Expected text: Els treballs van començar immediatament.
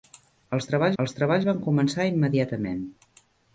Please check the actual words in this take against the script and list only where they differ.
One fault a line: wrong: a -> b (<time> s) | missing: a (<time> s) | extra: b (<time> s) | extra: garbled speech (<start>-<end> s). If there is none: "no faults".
extra: els treballs (1.0 s)